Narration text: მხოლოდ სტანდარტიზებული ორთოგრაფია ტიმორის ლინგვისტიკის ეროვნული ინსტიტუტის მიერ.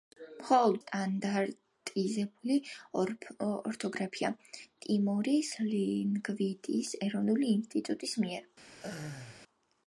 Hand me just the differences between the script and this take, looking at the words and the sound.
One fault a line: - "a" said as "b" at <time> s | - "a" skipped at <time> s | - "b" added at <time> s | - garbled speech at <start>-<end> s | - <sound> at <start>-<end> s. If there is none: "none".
- laugh at 8.7-9.4 s